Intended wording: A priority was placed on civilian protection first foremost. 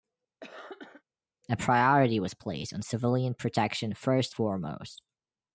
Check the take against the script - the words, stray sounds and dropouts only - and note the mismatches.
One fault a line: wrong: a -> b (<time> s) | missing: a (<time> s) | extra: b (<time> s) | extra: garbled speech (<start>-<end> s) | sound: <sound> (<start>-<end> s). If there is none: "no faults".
sound: cough (0.4-1.0 s)